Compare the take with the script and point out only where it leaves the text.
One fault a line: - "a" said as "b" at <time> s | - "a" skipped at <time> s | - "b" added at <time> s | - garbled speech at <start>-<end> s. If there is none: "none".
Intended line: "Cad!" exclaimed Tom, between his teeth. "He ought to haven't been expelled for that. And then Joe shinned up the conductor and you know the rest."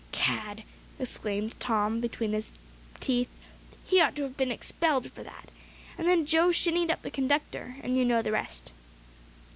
- "haven't" said as "have" at 4.2 s